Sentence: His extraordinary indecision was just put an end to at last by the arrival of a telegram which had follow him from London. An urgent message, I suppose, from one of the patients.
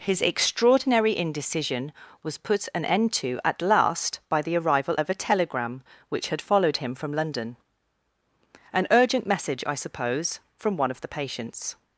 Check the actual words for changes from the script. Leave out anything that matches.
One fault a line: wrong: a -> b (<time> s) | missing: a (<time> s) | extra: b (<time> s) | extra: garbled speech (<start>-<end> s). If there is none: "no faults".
missing: just (2.4 s)
wrong: follow -> followed (6.4 s)